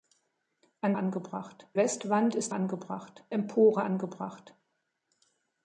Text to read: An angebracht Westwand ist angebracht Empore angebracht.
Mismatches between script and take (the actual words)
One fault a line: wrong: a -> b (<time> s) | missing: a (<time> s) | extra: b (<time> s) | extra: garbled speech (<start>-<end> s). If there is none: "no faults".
no faults